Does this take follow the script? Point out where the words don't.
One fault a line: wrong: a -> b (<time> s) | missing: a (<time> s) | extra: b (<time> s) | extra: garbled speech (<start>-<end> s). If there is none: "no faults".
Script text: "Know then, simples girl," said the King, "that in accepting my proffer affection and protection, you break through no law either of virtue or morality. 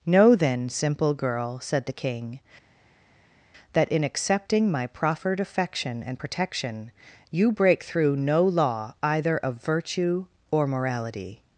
wrong: simples -> simple (0.7 s)
wrong: proffer -> proffered (4.9 s)